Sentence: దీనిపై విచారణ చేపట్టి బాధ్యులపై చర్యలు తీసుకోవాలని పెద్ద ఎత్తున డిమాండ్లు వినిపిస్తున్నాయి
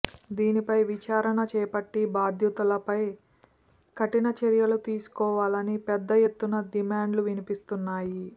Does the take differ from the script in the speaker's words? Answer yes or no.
yes